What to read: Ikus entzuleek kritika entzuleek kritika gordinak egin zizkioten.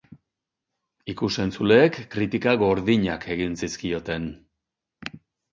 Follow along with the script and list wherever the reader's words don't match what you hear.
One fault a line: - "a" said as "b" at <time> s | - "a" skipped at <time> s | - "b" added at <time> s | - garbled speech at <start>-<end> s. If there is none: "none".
- "entzuleek kritika" skipped at 2.5 s